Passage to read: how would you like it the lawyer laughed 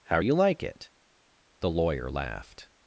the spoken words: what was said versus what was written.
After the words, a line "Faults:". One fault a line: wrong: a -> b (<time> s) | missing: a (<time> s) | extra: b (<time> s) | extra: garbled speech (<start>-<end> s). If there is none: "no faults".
how you like it the lawyer laughed
Faults:
missing: would (0.2 s)